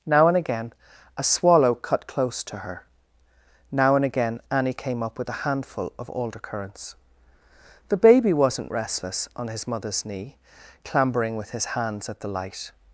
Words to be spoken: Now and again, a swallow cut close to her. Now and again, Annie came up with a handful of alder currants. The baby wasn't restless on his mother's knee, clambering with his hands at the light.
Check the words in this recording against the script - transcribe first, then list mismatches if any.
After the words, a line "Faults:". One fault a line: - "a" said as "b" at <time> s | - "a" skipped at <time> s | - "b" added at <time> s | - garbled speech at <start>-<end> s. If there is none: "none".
Now and again, a swallow cut close to her. Now and again, Annie came up with a handful of alder currants. The baby wasn't restless on his mother's knee, clambering with his hands at the light.
Faults:
none